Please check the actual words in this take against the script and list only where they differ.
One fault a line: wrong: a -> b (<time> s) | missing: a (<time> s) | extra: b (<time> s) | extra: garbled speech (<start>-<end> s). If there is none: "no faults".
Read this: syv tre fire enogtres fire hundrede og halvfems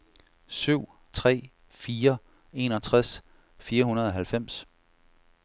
no faults